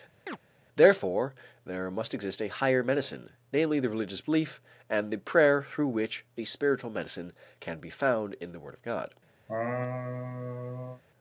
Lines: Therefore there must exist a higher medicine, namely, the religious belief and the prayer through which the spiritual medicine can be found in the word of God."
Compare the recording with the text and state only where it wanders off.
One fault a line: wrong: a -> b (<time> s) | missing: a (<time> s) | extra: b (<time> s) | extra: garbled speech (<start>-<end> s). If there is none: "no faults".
no faults